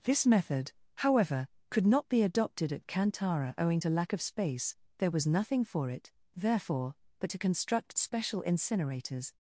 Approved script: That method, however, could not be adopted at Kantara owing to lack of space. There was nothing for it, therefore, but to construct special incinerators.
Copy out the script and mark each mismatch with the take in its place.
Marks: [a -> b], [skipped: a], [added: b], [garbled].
[That -> This] method, however, could not be adopted at Kantara owing to lack of space. There was nothing for it, therefore, but to construct special incinerators.